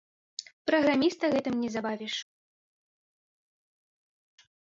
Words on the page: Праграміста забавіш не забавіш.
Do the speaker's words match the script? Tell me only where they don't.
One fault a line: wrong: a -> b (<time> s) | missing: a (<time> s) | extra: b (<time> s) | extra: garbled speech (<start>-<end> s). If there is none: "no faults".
wrong: забавіш -> гэтым (1.3 s)